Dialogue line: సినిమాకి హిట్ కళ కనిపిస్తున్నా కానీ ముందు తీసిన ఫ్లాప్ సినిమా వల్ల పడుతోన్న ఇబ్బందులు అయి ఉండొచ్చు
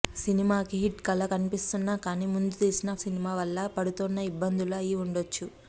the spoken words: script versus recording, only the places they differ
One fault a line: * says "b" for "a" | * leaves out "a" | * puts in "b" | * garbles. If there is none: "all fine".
* leaves out "ఫ్లాప్"